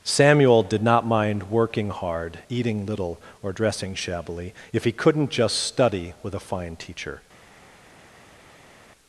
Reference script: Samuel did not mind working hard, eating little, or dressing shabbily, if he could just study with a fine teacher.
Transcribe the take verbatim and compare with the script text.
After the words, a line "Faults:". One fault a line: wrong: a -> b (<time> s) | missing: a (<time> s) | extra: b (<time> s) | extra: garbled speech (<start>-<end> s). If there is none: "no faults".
Samuel did not mind working hard, eating little, or dressing shabbily, if he couldn't just study with a fine teacher.
Faults:
wrong: could -> couldn't (4.9 s)